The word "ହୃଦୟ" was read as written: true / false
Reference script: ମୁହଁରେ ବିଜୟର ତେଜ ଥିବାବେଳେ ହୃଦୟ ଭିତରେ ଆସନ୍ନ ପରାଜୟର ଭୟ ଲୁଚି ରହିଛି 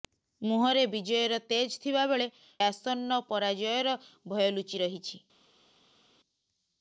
false